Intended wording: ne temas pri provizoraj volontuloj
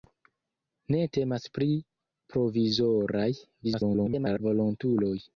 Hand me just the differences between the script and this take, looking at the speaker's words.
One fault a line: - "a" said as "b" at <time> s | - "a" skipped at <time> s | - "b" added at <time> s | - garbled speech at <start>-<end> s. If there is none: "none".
- garbled speech at 3.6-4.4 s